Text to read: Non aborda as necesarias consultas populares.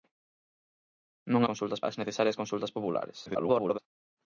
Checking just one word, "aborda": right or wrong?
wrong